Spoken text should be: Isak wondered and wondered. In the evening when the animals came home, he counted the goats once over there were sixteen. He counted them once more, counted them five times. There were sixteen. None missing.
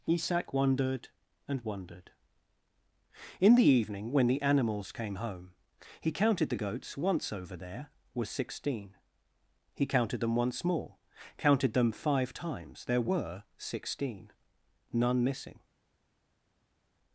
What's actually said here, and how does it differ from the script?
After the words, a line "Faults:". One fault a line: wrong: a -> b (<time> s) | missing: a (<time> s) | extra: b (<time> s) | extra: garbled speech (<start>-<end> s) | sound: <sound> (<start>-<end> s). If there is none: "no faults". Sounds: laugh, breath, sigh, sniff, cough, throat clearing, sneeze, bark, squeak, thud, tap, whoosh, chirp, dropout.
Isak wondered and wondered. In the evening when the animals came home, he counted the goats once over there were sixteen. He counted them once more, counted them five times. There were sixteen. None missing.
Faults:
no faults